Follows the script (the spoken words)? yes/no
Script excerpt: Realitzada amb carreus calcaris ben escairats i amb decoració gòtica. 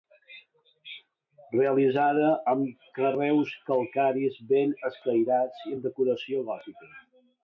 yes